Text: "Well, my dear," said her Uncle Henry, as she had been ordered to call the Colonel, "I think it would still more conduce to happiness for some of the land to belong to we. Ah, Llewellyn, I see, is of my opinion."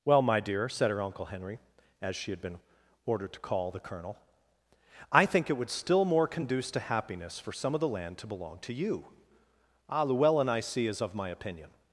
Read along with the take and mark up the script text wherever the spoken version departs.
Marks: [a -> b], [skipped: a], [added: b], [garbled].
"Well, my dear," said her Uncle Henry, as she had been ordered to call the Colonel, "I think it would still more conduce to happiness for some of the land to belong to [we. -> you] Ah, Llewellyn, I see, is of my opinion."